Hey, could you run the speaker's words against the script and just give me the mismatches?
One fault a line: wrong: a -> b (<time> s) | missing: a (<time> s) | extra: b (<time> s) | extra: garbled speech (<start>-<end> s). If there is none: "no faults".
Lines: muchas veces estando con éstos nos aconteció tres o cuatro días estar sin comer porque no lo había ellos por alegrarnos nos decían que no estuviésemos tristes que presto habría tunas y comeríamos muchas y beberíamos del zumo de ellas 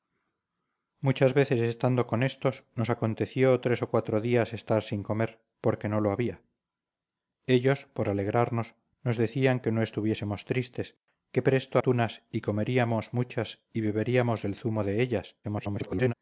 missing: habría (11.8 s)
extra: garbled speech (15.4-16.1 s)